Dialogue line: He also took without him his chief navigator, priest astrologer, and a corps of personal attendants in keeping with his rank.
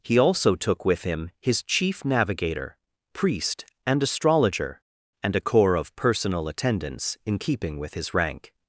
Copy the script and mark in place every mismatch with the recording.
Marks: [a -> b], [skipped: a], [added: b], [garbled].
He also took [without -> with] him his chief navigator, priest [added: and] astrologer, and a corps of personal attendants in keeping with his rank.